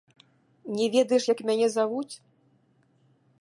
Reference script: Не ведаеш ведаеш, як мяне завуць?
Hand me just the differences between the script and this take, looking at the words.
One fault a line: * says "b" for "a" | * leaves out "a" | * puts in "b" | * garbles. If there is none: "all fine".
* leaves out "ведаеш"